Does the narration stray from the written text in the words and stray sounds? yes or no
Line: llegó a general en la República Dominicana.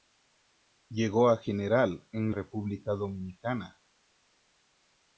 yes